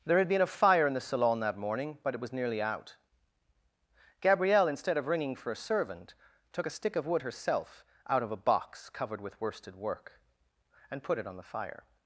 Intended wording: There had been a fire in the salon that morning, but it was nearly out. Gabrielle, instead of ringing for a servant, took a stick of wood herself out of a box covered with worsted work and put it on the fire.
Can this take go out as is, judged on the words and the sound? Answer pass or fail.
pass